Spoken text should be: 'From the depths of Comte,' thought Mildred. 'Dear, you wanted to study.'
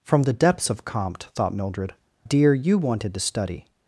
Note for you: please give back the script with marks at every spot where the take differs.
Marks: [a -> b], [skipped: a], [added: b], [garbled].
'From the depths of Comte,' thought Mildred. 'Dear, you wanted to study.'